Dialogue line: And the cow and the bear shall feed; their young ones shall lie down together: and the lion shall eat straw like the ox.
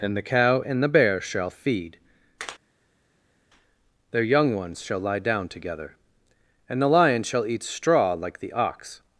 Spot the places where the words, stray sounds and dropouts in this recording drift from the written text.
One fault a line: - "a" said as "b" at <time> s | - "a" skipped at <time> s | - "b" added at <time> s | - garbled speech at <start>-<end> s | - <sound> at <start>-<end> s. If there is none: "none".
none